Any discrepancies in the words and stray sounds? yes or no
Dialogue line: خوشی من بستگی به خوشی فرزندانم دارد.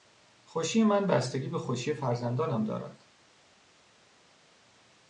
no